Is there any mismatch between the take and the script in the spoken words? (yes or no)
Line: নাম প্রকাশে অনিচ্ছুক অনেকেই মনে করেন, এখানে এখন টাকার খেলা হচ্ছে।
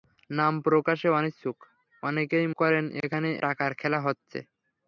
yes